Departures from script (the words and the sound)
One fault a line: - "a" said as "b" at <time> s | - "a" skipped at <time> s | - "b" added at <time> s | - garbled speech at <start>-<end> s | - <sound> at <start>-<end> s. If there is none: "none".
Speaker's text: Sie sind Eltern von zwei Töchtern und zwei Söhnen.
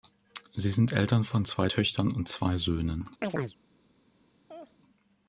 - chirp at 3.2-3.6 s
- laugh at 4.5-4.8 s